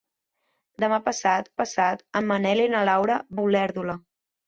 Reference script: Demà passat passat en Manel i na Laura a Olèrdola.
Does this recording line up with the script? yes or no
yes